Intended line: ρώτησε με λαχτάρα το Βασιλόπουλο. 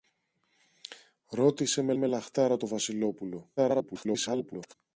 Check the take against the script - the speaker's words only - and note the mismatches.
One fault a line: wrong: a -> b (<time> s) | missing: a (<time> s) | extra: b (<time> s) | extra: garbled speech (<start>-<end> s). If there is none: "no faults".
extra: με (1.9 s)
extra: garbled speech (3.6-4.7 s)